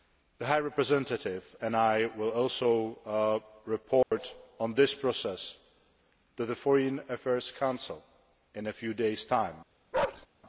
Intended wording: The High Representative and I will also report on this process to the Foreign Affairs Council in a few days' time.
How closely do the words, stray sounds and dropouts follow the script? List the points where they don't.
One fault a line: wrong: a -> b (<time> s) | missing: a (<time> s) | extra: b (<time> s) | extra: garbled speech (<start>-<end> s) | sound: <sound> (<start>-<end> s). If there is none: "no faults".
sound: dropout (4.0-4.1 s)
sound: bark (9.9-10.3 s)